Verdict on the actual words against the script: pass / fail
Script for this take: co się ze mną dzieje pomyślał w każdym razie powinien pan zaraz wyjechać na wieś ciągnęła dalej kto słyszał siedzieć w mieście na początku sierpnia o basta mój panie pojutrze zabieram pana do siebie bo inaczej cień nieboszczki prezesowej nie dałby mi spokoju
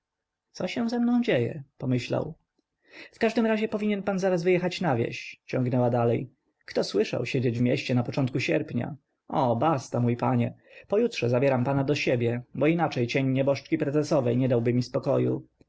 pass